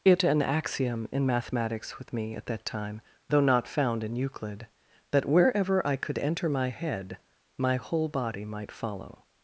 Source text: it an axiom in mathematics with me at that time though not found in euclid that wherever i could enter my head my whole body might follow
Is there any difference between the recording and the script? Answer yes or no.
no